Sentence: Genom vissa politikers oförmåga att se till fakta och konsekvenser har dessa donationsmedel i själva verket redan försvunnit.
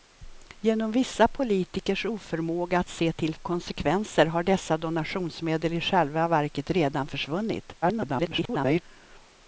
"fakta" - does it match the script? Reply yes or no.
no